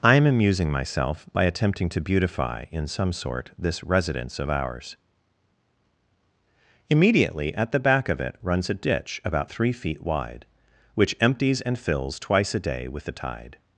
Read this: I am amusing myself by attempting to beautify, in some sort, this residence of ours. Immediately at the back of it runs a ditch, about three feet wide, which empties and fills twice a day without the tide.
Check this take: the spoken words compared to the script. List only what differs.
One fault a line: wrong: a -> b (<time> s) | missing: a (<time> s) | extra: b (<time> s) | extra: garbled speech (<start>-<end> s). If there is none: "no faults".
wrong: without -> with (12.9 s)